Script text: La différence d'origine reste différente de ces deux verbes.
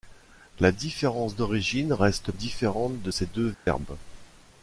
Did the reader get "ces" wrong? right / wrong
right